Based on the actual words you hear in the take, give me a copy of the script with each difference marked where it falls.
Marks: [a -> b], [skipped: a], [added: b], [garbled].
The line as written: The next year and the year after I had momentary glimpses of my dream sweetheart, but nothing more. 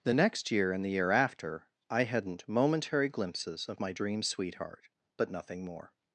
The next year and the year after I [had -> hadn't] momentary glimpses of my dream sweetheart, but nothing more.